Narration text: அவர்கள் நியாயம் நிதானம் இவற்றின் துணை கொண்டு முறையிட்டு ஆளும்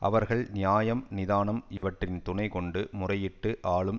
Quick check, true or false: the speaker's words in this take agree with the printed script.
true